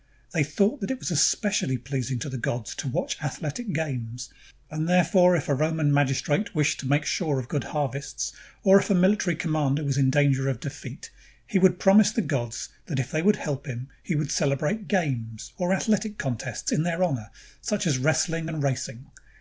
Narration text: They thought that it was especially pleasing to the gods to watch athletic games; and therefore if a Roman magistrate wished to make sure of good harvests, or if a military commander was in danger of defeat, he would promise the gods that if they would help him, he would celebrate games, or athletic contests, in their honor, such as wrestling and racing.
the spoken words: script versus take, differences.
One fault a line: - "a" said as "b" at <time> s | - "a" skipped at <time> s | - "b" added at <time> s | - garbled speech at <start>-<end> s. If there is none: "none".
none